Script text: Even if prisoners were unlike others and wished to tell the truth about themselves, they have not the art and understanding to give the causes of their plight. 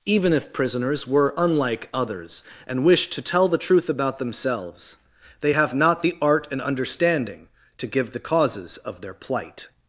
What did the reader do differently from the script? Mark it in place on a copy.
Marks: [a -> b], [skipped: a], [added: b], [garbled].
Even if prisoners were unlike others and wished to tell the truth about themselves, they have not the art and understanding to give the causes of their plight.